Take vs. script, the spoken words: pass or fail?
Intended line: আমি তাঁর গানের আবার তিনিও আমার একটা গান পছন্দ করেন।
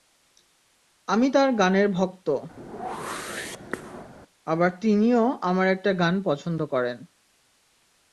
fail